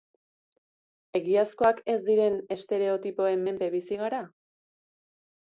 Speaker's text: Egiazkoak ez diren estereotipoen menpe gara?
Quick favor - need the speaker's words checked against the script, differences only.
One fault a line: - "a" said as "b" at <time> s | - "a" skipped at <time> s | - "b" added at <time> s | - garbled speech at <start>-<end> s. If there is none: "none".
- "bizi" added at 3.8 s